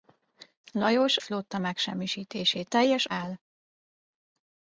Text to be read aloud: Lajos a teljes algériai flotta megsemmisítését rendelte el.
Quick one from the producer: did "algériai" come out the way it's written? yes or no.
no